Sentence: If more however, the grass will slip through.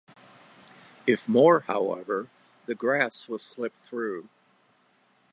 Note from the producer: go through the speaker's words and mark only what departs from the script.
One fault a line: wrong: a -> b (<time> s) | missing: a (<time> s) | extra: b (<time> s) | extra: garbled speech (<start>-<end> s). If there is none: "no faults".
no faults